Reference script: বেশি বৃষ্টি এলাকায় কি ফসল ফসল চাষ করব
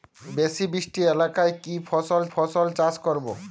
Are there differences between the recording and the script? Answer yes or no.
no